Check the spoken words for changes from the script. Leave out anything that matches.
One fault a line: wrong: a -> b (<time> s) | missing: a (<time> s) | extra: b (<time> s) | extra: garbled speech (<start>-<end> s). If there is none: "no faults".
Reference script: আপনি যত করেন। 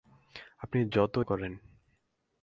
no faults